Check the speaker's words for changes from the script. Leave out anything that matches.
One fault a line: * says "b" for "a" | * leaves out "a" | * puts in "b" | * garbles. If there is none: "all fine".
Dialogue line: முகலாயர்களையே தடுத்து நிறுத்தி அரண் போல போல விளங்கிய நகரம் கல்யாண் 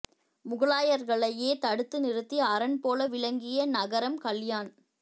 * leaves out "போல"